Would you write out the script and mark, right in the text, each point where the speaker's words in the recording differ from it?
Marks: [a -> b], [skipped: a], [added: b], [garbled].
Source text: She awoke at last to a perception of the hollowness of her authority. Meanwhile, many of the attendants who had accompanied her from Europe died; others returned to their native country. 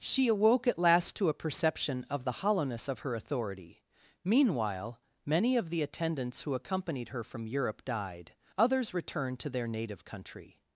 She awoke at last to a perception of the hollowness of her authority. Meanwhile, many of the attendants who [skipped: had] accompanied her from Europe died; others returned to their native country.